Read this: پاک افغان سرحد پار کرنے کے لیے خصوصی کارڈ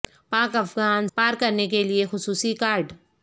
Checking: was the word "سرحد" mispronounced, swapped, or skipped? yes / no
yes